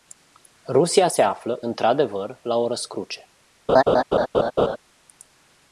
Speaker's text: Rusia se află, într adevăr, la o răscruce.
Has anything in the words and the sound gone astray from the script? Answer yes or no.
yes